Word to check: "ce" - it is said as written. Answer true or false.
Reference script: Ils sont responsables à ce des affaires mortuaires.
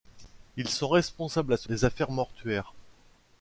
true